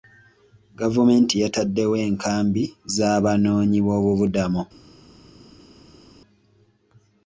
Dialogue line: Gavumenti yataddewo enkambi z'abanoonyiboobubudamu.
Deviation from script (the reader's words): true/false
false